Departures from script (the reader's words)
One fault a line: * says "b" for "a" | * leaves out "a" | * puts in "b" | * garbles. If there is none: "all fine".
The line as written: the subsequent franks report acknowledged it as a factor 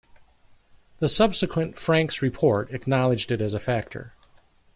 all fine